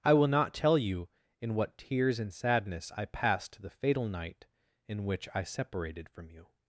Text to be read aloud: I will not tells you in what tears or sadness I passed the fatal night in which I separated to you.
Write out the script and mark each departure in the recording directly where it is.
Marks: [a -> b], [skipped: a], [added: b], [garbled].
I will not [tells -> tell] you in what tears [or -> and] sadness I passed the fatal night in which I separated [to -> from] you.